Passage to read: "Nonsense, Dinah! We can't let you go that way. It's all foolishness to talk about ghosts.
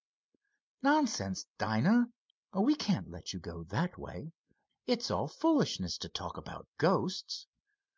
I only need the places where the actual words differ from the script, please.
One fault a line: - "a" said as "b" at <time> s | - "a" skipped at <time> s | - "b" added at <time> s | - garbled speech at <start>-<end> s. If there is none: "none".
none